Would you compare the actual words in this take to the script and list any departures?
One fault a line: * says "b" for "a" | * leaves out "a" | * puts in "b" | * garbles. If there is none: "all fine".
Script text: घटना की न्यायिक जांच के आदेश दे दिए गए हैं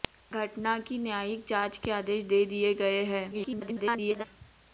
* garbles